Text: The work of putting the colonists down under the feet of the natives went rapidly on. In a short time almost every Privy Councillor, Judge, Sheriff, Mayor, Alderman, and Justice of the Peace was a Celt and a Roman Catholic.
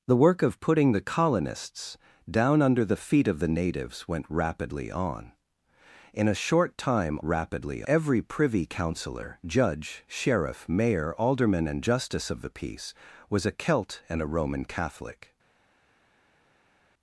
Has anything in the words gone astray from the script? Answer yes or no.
yes